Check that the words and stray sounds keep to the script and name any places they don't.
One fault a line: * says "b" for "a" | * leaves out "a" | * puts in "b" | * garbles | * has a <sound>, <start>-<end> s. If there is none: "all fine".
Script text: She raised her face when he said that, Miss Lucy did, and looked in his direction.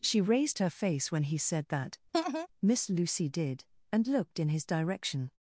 * has a laugh, 2.1-2.5 s